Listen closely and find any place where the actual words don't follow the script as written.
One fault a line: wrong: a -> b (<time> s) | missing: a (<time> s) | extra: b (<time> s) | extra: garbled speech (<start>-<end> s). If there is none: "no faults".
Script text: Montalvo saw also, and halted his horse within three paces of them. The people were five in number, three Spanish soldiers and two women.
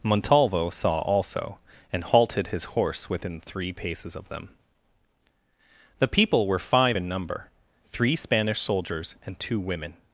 no faults